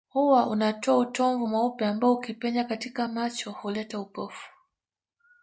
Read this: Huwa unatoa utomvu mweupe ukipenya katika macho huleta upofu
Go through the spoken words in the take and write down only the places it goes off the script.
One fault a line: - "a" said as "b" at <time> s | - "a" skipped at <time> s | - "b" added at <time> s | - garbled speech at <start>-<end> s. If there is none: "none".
- "ambao" added at 1.9 s